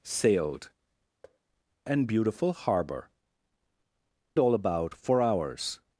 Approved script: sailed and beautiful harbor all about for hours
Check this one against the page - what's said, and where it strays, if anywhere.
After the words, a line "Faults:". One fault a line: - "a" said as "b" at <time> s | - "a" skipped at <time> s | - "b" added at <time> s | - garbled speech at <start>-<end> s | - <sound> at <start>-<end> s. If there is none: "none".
sailed and beautiful harbor all about for hours
Faults:
- thud at 1.2-1.4 s